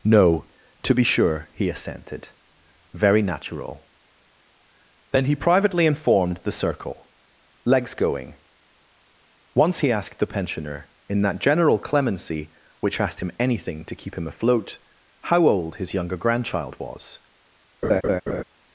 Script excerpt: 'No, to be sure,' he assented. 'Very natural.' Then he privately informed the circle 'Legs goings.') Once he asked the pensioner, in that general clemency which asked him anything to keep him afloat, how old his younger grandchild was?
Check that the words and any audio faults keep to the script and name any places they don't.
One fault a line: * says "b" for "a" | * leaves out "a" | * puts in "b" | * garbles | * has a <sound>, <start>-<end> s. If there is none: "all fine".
* says "going" for "goings"
* has a laugh, 17.8-18.4 s